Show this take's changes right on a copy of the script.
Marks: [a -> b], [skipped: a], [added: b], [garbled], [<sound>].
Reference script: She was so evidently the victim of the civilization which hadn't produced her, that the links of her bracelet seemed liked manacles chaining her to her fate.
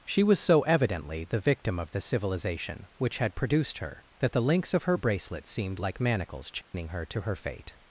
She was so evidently the victim of the civilization which [hadn't -> had] produced her, that the links of her bracelet seemed [liked -> like] manacles chaining [dropout] her to her fate.